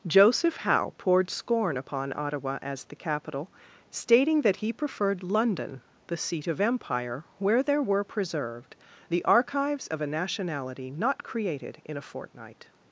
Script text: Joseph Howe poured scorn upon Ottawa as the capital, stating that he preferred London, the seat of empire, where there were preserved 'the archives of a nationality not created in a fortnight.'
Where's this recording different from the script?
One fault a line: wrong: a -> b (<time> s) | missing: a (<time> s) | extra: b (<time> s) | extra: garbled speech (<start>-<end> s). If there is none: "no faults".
no faults